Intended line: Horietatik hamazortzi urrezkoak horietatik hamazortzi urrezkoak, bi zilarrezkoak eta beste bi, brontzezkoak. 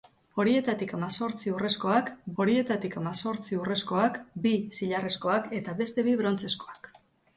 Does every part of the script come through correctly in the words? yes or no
yes